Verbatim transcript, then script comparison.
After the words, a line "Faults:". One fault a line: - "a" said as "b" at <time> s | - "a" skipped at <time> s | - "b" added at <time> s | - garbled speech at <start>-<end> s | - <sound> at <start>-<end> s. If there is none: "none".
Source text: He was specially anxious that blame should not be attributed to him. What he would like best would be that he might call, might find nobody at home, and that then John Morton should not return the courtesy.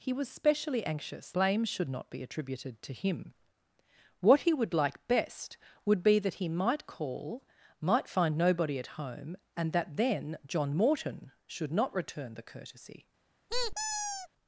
He was specially anxious blame should not be attributed to him. What he would like best would be that he might call, might find nobody at home, and that then John Morton should not return the courtesy.
Faults:
- "that" skipped at 1.3 s
- squeak at 13.5-14.3 s